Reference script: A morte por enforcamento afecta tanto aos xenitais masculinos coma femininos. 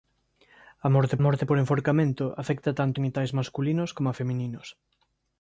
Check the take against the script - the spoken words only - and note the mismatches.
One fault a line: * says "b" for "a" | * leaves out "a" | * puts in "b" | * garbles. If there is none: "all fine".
* puts in "morte"
* leaves out "aos"